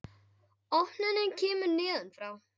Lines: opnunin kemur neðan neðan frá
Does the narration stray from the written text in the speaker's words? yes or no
yes